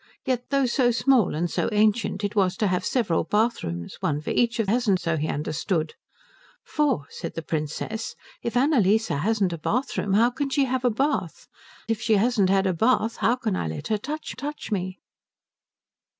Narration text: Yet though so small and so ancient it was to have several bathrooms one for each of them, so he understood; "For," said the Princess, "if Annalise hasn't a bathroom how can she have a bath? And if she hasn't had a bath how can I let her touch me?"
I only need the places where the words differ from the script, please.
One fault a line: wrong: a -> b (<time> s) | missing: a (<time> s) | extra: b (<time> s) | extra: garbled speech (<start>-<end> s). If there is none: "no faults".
wrong: them -> hasn't (4.6 s)
missing: And (11.5 s)
extra: touch (14.3 s)